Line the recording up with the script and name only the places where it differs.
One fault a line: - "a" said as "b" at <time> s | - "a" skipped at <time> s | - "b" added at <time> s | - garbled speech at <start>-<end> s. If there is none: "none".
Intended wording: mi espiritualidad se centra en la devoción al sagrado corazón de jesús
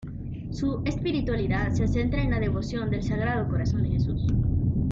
- "mi" said as "su" at 0.5 s
- "al" said as "del" at 2.9 s